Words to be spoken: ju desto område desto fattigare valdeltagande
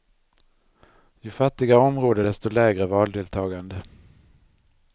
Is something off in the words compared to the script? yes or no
yes